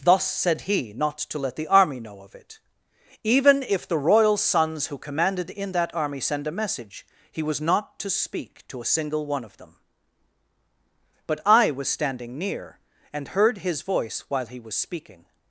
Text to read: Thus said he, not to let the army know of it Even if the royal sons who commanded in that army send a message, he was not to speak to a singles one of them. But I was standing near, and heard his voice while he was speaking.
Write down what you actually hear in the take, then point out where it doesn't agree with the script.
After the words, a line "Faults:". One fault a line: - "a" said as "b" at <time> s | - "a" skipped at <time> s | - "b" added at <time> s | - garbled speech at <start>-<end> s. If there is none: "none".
Thus said he, not to let the army know of it Even if the royal sons who commanded in that army send a message, he was not to speak to a single one of them. But I was standing near, and heard his voice while he was speaking.
Faults:
- "singles" said as "single" at 8.8 s